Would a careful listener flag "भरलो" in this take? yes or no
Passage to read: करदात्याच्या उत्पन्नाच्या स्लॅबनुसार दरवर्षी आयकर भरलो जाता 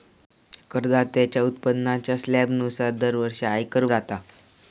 yes